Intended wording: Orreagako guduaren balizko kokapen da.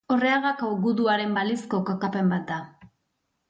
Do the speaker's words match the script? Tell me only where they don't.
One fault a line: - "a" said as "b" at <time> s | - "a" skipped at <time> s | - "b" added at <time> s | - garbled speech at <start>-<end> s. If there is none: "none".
- "bat" added at 2.3 s